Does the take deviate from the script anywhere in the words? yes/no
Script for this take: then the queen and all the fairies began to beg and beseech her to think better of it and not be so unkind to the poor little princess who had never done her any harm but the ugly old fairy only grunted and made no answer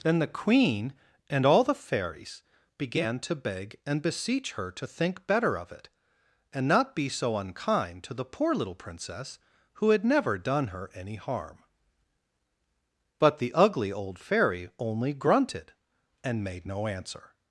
no